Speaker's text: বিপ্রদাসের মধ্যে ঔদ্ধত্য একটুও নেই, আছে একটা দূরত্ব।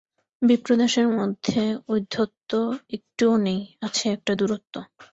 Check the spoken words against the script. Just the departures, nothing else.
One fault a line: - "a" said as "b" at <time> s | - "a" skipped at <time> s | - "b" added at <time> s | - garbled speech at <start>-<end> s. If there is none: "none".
none